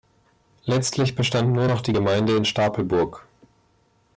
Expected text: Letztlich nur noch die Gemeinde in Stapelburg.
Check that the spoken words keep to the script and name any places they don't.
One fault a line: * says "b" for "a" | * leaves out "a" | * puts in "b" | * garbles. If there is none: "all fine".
* puts in "bestand"